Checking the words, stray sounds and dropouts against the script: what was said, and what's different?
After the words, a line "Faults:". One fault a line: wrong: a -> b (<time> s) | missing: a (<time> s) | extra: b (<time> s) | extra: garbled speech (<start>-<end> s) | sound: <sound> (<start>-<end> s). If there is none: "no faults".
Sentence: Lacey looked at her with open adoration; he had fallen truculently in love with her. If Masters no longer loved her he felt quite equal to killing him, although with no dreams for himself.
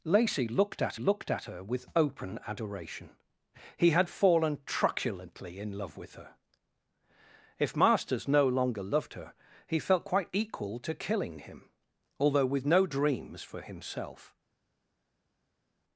Lacey looked at looked at her with open adoration; he had fallen truculently in love with her. If Masters no longer loved her he felt quite equal to killing him, although with no dreams for himself.
Faults:
extra: looked at (1.0 s)